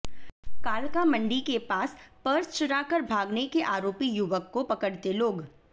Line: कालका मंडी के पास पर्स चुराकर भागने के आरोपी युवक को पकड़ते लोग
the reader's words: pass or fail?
pass